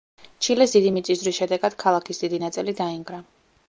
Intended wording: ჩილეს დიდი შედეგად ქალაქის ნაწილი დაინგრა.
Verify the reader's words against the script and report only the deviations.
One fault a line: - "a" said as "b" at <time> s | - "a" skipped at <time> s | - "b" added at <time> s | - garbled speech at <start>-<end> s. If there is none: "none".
- "მიწისძვრის" added at 1.0 s
- "დიდი" added at 2.3 s